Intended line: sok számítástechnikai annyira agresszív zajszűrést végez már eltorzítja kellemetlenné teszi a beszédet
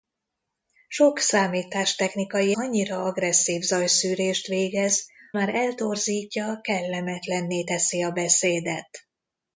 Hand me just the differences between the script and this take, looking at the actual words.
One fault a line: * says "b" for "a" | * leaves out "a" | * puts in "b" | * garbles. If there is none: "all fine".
all fine